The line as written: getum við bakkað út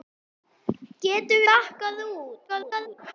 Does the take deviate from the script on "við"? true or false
true